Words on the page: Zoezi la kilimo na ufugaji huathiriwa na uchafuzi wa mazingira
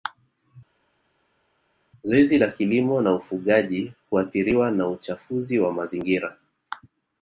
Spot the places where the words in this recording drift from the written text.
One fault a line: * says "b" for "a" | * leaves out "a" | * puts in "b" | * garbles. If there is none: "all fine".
all fine